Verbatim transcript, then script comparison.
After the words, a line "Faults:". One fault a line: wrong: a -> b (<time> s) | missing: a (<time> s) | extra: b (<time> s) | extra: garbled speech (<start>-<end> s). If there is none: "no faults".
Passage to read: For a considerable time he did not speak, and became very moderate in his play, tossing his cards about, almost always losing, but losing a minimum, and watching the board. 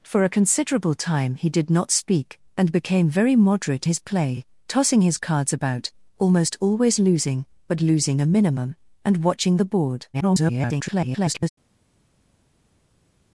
For a considerable time he did not speak, and became very moderate his play, tossing his cards about, almost always losing, but losing a minimum, and watching the board. [garbled]
Faults:
missing: in (3.9 s)
extra: garbled speech (10.1-11.5 s)